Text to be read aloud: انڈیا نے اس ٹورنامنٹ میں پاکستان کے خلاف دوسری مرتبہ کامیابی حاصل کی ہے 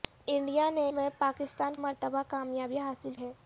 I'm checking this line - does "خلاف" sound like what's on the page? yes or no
no